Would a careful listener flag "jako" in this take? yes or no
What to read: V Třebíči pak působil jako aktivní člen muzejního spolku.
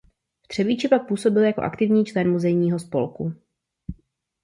no